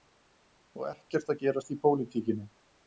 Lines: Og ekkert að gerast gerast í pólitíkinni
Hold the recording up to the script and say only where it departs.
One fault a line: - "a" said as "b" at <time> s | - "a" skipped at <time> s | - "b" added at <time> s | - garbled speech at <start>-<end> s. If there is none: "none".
- "gerast" skipped at 1.7 s